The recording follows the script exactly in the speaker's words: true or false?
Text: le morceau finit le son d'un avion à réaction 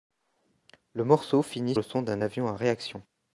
true